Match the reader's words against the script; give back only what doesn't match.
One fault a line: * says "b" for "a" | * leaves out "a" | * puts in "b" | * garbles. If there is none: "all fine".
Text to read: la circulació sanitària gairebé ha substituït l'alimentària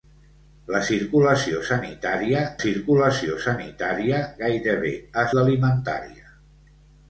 * puts in "circulació sanitària"
* leaves out "substituït"